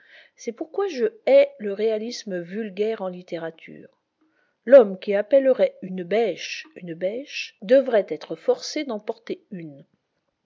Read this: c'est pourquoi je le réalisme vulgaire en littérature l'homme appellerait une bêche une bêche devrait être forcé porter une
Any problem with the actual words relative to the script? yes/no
yes